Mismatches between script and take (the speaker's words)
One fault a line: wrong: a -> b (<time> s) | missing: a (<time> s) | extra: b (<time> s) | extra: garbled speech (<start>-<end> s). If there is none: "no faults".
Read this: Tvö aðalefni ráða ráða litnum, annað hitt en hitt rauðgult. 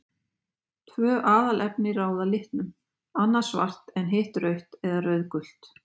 missing: ráða (2.3 s)
wrong: hitt -> svart (3.5 s)
extra: rautt eða (4.5 s)